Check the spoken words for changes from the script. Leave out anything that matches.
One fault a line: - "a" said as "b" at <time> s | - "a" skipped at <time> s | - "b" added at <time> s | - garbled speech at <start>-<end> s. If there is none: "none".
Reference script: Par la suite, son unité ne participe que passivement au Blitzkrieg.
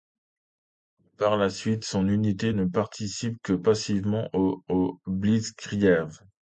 - "au" added at 4.7 s